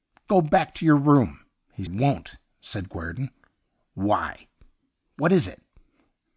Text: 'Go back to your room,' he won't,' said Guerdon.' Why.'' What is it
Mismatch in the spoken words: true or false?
false